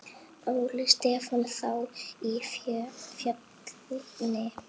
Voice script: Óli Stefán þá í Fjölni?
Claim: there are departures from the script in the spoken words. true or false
false